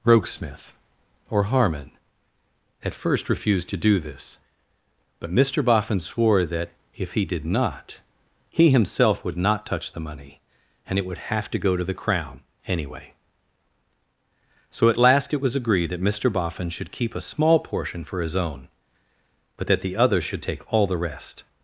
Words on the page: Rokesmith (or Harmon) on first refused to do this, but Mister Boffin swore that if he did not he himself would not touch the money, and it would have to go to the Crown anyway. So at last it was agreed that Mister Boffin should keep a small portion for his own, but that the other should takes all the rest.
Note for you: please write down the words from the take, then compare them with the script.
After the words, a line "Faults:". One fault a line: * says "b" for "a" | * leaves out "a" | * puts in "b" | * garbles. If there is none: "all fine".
Rokesmith (or Harmon) at first refused to do this, but Mister Boffin swore that if he did not he himself would not touch the money, and it would have to go to the Crown anyway. So at last it was agreed that Mister Boffin should keep a small portion for his own, but that the other should take all the rest.
Faults:
* says "at" for "on"
* says "take" for "takes"